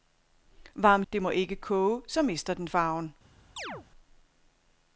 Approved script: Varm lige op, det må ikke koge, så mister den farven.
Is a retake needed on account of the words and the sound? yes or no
yes